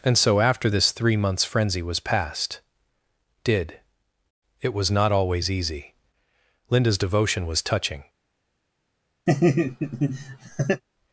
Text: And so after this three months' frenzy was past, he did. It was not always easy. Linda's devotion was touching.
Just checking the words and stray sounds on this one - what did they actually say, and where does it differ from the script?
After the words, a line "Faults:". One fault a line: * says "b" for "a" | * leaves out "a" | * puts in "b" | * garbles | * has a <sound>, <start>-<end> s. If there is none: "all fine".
And so after this three months' frenzy was past, did. It was not always easy. Linda's devotion was touching.
Faults:
* leaves out "he"
* has a laugh, 9.3-10.8 s